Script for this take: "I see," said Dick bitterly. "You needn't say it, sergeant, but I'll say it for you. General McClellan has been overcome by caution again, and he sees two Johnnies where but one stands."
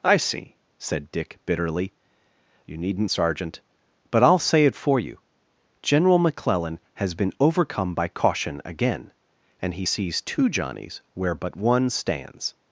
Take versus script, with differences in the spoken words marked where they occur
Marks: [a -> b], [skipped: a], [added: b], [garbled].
"I see," said Dick bitterly. "You needn't [skipped: say it,] sergeant, but I'll say it for you. General McClellan has been overcome by caution again, and he sees two Johnnies where but one stands."